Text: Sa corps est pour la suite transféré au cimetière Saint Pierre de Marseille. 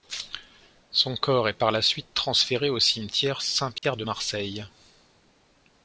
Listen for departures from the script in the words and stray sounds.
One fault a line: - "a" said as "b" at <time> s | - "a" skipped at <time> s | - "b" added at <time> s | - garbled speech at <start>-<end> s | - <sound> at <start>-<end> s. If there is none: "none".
- "Sa" said as "Son" at 0.9 s
- "pour" said as "par" at 1.5 s
- dropout at 3.8-3.8 s